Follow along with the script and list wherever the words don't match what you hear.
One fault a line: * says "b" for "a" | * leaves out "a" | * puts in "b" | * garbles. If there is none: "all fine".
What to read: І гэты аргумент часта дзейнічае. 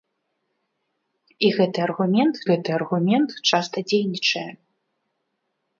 * puts in "гэты аргумент"